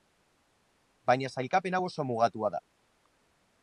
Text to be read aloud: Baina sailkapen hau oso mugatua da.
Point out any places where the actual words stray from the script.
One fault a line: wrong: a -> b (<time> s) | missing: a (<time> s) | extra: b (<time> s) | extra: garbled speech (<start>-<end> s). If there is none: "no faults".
no faults